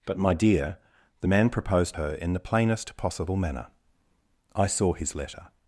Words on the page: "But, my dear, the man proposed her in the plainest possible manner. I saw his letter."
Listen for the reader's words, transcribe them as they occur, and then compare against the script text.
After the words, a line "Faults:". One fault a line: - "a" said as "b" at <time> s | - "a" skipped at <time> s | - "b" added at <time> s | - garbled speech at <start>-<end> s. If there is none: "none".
"But, my dear, the man proposed her in the plainest possible manner. I saw his letter."
Faults:
none